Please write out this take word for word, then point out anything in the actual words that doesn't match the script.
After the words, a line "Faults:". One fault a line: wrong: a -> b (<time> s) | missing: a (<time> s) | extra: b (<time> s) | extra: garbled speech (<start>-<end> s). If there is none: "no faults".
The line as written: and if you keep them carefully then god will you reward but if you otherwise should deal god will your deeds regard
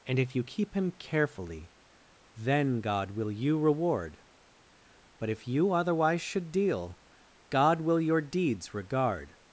and if you keep him carefully then god will you reward but if you otherwise should deal god will your deeds regard
Faults:
wrong: them -> him (0.7 s)